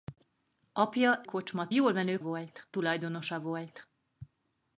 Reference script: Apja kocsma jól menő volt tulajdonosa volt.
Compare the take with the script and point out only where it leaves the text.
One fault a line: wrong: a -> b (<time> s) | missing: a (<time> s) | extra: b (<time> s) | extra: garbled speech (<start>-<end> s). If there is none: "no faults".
no faults